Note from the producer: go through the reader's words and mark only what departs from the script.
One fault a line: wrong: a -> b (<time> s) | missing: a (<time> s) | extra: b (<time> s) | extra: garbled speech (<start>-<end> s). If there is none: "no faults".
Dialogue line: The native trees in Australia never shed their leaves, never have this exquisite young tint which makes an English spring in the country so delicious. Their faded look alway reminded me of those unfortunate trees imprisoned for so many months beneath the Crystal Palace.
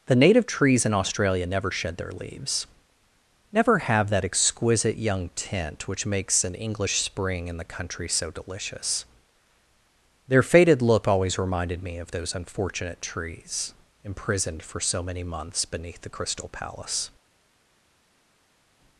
wrong: this -> that (4.1 s)
wrong: alway -> always (11.1 s)